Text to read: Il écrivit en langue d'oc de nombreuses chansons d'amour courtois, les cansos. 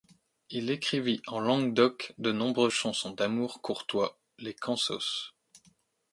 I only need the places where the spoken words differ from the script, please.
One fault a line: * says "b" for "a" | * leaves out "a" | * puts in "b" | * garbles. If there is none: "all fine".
all fine